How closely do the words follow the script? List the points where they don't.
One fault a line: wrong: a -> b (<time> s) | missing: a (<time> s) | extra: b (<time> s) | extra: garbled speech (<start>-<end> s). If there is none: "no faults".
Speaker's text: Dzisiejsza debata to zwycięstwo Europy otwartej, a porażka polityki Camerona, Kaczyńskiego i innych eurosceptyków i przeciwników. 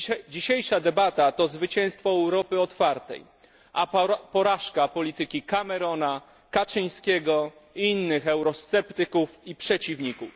no faults